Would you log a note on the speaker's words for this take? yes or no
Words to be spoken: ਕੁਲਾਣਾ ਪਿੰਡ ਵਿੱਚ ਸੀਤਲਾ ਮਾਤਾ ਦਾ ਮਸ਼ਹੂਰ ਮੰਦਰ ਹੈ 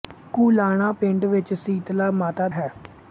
yes